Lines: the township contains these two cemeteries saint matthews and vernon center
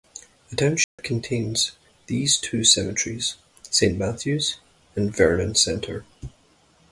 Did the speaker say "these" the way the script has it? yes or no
yes